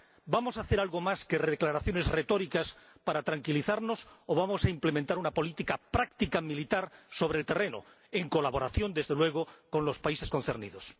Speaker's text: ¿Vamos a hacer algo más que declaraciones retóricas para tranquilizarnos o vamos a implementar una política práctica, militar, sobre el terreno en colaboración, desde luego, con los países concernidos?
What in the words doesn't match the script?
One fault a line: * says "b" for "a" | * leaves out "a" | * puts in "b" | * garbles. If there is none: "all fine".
all fine